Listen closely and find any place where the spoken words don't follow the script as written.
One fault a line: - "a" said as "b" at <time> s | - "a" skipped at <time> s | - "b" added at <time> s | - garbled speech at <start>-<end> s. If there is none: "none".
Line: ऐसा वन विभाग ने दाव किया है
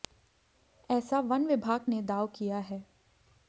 none